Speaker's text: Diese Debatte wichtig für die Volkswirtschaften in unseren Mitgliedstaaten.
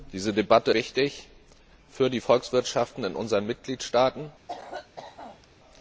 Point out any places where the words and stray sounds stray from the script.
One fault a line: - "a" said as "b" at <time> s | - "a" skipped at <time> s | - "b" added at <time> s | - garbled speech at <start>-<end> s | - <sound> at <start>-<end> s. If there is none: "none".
- cough at 4.5-5.5 s